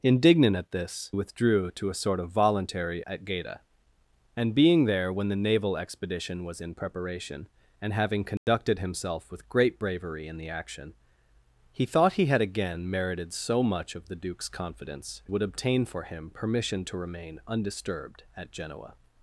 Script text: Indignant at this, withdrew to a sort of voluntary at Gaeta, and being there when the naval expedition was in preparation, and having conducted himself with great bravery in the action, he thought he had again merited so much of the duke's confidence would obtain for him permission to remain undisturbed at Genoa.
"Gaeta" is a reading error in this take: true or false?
false